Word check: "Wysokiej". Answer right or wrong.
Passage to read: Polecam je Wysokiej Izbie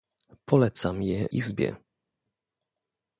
wrong